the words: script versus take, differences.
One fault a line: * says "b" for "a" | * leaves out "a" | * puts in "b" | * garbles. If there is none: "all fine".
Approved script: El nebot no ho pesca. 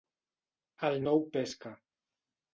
* leaves out "nebot"